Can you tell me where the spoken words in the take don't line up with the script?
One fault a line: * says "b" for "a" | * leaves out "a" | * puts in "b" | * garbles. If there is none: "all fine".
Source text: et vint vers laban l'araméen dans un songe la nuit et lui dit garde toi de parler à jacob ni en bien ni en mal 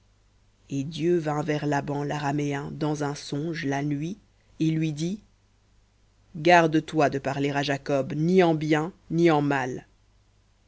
* puts in "dieu"